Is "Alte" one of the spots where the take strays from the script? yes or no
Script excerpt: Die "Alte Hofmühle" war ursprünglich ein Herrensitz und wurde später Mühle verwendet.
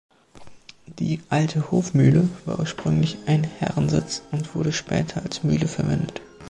no